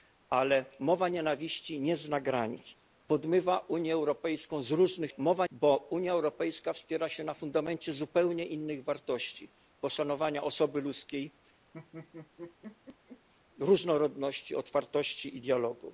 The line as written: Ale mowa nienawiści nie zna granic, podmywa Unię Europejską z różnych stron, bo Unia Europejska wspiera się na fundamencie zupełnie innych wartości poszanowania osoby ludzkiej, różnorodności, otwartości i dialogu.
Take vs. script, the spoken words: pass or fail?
fail